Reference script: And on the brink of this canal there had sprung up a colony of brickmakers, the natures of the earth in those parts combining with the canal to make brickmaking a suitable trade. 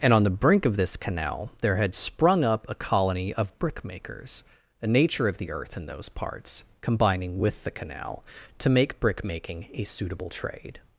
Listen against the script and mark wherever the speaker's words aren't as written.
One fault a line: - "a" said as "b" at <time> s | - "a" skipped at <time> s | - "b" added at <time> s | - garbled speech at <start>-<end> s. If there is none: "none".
- "natures" said as "nature" at 4.9 s